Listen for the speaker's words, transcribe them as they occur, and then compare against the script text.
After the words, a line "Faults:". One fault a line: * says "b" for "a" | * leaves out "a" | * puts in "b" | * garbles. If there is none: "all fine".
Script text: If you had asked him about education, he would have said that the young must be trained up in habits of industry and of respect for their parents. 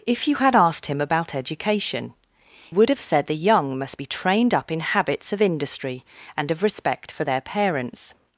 If you had asked him about education, would have said the young must be trained up in habits of industry and of respect for their parents.
Faults:
* leaves out "he"
* leaves out "that"